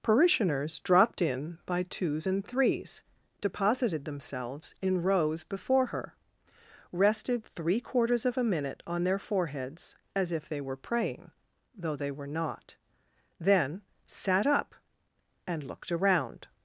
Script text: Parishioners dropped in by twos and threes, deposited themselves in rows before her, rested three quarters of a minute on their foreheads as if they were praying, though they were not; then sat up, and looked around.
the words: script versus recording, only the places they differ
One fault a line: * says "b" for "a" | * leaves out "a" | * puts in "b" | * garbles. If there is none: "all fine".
all fine